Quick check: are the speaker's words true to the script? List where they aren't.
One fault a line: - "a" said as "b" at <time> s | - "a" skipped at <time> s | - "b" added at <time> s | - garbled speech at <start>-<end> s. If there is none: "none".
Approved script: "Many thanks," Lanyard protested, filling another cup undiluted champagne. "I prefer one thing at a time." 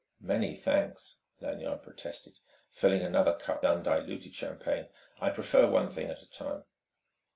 none